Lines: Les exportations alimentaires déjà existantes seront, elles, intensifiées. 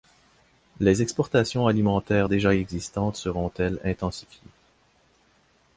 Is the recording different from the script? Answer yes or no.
no